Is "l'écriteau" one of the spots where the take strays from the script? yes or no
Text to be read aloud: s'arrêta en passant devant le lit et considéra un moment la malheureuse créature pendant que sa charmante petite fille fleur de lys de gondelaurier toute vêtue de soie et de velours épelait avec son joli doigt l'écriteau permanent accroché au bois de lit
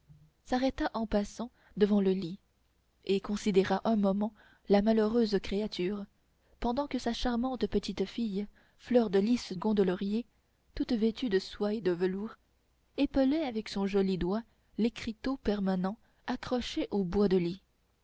no